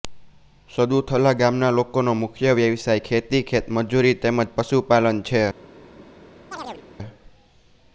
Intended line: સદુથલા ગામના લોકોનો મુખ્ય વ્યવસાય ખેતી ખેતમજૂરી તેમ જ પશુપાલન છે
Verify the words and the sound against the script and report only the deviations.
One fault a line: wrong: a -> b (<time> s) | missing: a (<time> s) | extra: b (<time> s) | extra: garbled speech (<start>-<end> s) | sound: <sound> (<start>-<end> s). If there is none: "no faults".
sound: chirp (6.5-6.9 s)